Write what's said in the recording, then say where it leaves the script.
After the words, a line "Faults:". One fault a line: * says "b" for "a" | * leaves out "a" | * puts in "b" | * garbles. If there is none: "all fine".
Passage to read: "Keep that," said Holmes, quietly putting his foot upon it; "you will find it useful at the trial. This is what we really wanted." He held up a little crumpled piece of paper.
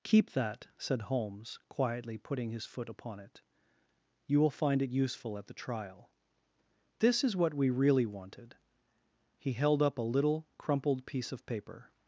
"Keep that," said Holmes, quietly putting his foot upon it; "you will find it useful at the trial. This is what we really wanted." He held up a little crumpled piece of paper.
Faults:
all fine